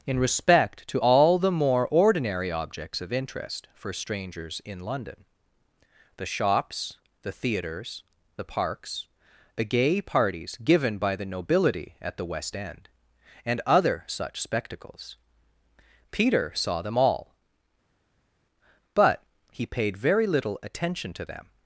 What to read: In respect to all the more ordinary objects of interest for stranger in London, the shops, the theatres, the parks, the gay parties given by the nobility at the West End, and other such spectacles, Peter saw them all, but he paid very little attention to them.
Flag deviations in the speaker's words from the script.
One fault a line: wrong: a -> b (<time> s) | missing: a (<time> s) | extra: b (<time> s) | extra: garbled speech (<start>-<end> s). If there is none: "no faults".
wrong: stranger -> strangers (3.9 s)